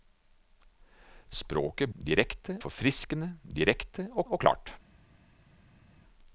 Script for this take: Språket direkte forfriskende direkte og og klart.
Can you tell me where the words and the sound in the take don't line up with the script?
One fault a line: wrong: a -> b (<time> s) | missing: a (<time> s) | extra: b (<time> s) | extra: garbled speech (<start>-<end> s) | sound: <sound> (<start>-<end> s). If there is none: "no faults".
no faults